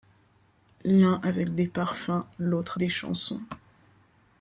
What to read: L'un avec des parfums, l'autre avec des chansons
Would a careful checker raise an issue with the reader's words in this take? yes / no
yes